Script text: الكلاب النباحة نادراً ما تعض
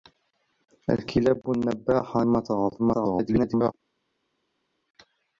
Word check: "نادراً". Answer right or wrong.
wrong